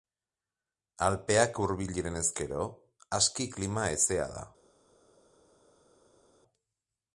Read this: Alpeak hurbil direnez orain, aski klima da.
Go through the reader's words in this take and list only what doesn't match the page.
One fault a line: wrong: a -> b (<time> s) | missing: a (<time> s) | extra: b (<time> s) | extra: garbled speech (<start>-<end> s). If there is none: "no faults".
wrong: orain -> gero (2.4 s)
extra: hezea (3.9 s)